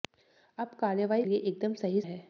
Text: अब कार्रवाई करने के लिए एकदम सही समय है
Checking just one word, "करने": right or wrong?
wrong